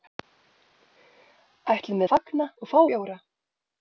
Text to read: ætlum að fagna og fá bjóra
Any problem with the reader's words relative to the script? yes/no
no